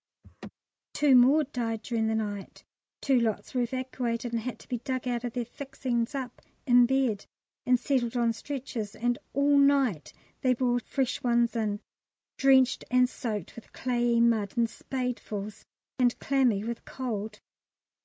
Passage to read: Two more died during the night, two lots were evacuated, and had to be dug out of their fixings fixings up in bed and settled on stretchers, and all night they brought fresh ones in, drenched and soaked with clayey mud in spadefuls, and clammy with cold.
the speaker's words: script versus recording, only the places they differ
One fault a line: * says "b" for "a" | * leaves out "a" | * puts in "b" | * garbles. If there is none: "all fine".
* leaves out "fixings"